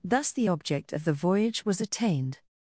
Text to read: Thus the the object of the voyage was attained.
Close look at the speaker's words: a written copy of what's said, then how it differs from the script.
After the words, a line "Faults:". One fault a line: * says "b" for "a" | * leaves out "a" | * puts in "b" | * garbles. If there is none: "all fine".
Thus the object of the voyage was attained.
Faults:
* leaves out "the"